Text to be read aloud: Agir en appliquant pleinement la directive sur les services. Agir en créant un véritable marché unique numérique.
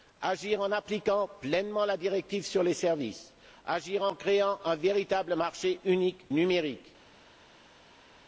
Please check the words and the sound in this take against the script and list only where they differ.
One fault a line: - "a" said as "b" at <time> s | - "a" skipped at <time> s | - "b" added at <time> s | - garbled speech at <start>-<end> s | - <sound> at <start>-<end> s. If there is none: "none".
none